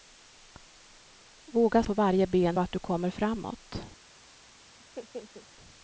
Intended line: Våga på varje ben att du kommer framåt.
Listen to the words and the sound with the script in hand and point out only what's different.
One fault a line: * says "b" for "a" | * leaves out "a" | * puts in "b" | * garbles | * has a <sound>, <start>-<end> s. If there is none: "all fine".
* has a laugh, 4.8-5.5 s